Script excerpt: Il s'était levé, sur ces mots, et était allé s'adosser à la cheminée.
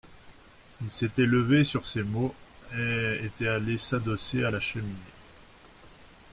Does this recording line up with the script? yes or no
yes